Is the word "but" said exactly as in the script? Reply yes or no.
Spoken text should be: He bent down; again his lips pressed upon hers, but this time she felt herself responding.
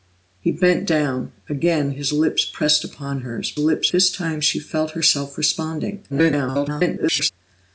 no